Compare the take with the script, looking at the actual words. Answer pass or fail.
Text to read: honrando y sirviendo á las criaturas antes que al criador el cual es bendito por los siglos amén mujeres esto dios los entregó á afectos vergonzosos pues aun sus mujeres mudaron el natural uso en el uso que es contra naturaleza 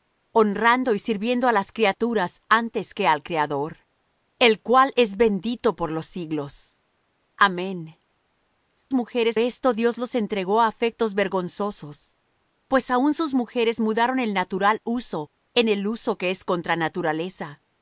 pass